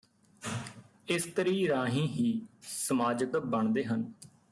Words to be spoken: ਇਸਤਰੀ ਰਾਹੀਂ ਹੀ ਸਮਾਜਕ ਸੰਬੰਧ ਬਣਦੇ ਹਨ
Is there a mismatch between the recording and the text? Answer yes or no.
yes